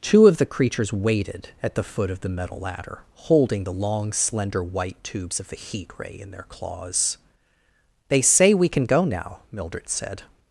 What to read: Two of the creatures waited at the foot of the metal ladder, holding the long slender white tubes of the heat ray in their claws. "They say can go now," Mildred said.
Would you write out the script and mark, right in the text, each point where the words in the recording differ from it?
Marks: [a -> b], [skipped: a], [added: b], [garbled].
Two of the creatures waited at the foot of the metal ladder, holding the long slender white tubes of the heat ray in their claws. "They say [added: we] can go now," Mildred said.